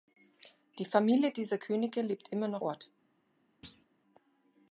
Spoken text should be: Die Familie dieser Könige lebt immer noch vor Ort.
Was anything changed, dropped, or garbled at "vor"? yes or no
yes